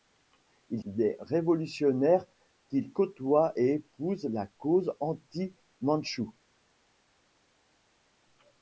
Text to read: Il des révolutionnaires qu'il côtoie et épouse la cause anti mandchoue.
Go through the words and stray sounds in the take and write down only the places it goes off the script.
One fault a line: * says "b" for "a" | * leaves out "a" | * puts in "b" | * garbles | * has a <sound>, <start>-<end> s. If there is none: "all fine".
all fine